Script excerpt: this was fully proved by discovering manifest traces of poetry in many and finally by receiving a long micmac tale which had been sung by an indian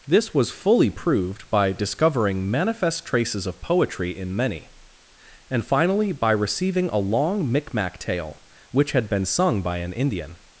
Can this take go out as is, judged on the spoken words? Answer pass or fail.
pass